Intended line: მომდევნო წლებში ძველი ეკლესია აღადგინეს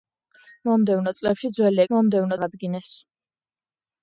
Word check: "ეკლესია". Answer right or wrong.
wrong